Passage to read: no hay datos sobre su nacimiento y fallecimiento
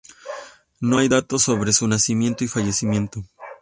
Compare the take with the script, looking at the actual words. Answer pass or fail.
pass